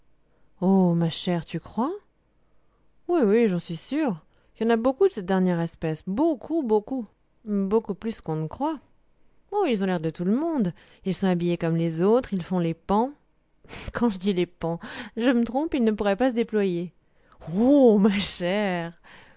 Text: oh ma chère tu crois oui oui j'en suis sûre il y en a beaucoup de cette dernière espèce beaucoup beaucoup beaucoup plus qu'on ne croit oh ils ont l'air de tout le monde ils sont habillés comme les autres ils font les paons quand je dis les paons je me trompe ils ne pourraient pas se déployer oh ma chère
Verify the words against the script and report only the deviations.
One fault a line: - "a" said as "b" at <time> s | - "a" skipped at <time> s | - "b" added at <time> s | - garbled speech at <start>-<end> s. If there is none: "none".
none